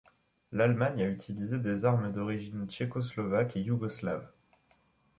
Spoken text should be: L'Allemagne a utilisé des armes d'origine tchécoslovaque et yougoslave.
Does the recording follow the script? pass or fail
pass